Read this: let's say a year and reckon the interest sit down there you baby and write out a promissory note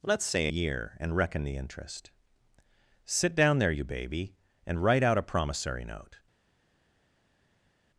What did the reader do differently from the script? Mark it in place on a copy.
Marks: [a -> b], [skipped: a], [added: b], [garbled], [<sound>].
let's say [skipped: a] year and reckon the interest sit down there you baby and write out a promissory note